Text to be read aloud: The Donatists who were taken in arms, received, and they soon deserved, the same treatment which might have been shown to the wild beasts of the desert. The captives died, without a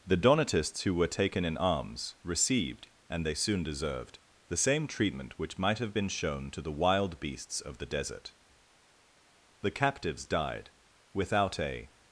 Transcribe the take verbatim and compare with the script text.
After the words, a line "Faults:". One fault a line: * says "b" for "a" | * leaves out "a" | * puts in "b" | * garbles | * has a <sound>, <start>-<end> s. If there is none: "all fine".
The Donatists who were taken in arms, received, and they soon deserved, the same treatment which might have been shown to the wild beasts of the desert. The captives died, without a
Faults:
all fine